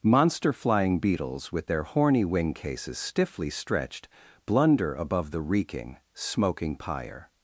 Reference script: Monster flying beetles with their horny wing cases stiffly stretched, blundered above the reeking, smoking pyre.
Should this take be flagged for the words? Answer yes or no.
yes